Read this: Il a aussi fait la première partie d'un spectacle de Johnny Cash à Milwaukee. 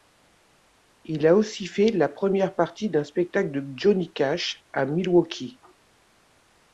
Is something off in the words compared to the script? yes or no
no